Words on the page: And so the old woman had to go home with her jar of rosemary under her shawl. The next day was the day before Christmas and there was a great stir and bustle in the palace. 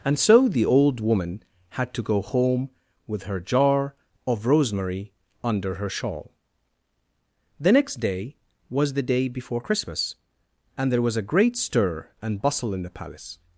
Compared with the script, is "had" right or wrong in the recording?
right